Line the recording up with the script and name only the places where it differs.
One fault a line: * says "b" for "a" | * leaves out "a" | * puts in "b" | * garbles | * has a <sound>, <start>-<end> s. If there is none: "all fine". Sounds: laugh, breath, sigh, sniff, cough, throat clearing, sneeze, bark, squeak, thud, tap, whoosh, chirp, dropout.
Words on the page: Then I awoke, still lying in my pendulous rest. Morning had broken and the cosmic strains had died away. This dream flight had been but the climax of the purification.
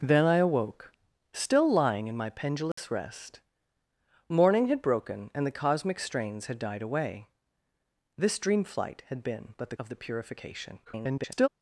* has a dropout, 2.7-2.8 s
* leaves out "climax"
* garbles